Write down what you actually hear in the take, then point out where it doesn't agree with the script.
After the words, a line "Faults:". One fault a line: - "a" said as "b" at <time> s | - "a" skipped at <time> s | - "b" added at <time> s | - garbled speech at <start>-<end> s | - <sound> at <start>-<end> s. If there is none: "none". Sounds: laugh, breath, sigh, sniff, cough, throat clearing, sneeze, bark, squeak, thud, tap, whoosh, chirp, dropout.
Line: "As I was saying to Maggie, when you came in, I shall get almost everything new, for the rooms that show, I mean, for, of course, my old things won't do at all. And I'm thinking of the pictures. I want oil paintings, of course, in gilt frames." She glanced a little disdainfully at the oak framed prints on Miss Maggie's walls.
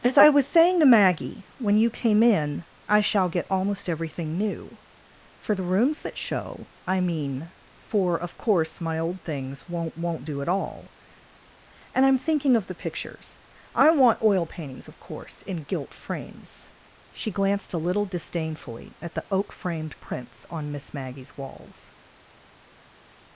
"As I was saying to Maggie, when you came in, I shall get almost everything new, for the rooms that show, I mean, for, of course, my old things won't won't do at all. And I'm thinking of the pictures. I want oil paintings, of course, in gilt frames." She glanced a little disdainfully at the oak framed prints on Miss Maggie's walls.
Faults:
- "won't" added at 10.0 s